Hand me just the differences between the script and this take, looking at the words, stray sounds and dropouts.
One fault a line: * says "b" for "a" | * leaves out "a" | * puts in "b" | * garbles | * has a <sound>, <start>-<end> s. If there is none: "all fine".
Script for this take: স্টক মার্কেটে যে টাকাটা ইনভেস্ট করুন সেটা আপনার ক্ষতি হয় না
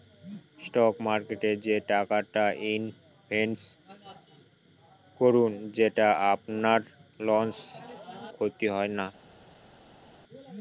all fine